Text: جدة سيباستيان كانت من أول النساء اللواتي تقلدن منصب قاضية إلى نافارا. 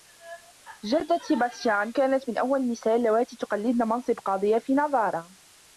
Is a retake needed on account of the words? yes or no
yes